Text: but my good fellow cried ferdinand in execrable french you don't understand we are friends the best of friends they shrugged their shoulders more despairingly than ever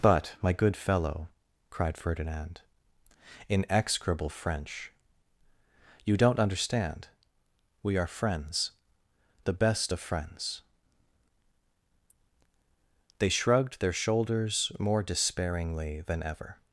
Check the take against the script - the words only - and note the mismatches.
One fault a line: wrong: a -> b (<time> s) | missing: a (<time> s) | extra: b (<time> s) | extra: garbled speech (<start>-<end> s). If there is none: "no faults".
no faults